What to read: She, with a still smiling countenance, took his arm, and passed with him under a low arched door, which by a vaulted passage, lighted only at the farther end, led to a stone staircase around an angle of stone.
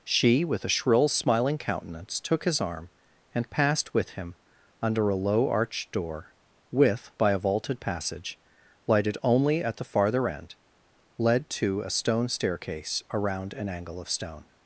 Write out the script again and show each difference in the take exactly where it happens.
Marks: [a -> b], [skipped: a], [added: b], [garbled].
She, with a [still -> shrill] smiling countenance, took his arm, and passed with him under a low arched door, [which -> with] by a vaulted passage, lighted only at the farther end, led to a stone staircase around an angle of stone.